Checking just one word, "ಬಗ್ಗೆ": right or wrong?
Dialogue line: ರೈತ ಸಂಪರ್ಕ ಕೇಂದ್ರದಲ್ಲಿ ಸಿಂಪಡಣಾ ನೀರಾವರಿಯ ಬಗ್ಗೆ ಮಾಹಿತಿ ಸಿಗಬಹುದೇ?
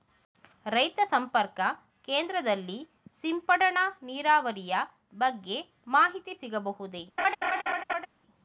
right